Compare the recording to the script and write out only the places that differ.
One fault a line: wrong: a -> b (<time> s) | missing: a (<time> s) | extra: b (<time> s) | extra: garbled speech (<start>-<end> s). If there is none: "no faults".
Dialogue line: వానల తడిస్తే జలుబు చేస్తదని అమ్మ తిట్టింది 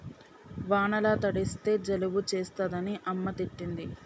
no faults